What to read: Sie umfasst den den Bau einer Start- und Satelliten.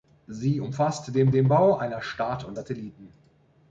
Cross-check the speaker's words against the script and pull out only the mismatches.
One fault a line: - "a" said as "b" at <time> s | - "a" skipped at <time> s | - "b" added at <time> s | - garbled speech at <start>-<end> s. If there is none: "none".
none